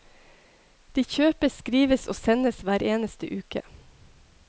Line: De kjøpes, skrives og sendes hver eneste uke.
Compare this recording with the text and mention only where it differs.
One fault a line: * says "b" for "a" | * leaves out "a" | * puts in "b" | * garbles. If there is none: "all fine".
all fine